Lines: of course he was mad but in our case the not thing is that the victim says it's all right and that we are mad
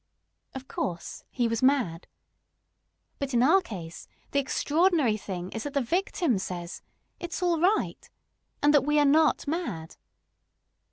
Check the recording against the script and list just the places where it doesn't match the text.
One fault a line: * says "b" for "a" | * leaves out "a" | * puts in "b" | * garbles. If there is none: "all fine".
* says "extraordinary" for "not"
* puts in "not"